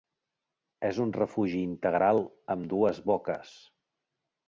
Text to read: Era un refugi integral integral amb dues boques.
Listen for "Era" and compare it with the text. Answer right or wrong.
wrong